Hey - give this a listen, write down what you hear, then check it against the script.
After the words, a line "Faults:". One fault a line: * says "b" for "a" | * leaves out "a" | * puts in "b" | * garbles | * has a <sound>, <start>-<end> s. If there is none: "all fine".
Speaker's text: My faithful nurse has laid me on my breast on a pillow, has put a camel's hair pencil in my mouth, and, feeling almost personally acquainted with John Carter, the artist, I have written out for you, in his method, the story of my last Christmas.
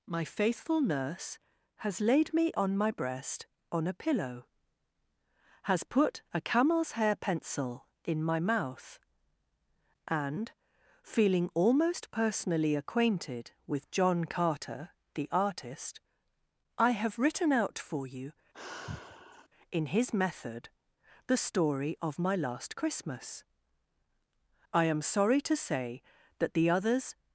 My faithful nurse has laid me on my breast on a pillow, has put a camel's hair pencil in my mouth, and, feeling almost personally acquainted with John Carter, the artist, I have written out for you, in his method, the story of my last Christmas. I am sorry to say that the others
Faults:
* has a sigh, 18.5-19.5 s
* puts in "I am sorry to say that the others"